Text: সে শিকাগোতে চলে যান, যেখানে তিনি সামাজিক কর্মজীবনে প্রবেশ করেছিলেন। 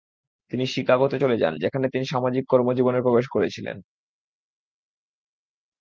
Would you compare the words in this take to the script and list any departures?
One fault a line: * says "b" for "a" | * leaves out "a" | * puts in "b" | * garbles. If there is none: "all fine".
* says "তিনি" for "সে"